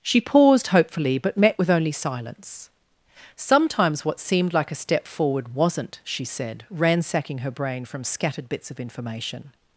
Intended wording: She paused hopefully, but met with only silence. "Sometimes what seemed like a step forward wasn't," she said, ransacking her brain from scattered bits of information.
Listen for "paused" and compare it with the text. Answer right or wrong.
right